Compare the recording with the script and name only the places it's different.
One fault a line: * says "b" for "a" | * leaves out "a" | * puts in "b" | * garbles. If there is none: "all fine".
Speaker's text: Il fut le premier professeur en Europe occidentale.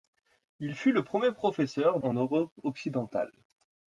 all fine